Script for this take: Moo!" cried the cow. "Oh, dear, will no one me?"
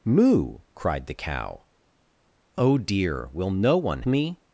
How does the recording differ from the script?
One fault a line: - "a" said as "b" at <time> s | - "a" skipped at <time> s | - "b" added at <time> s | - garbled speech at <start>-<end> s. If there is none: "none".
none